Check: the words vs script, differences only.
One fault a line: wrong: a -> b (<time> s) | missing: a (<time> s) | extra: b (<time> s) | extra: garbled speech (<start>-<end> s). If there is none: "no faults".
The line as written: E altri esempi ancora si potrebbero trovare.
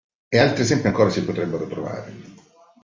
no faults